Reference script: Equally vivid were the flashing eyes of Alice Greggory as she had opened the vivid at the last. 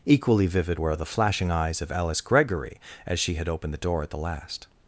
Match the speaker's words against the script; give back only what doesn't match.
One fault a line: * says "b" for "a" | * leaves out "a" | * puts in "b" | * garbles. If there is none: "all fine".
* says "door" for "vivid"